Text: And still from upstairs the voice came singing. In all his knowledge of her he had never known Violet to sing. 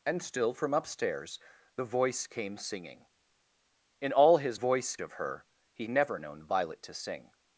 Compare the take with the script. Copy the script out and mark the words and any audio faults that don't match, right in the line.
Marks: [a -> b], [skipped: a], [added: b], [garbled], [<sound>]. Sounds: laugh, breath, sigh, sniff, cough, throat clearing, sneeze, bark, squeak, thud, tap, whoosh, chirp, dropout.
And still from upstairs the voice came singing. In all his [knowledge -> voice] of her he [skipped: had] never known Violet to sing.